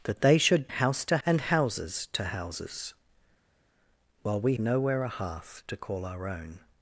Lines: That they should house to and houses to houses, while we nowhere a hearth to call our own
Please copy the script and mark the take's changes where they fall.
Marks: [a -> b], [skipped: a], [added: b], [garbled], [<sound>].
That they should house to and houses to houses, while we nowhere a hearth to call our own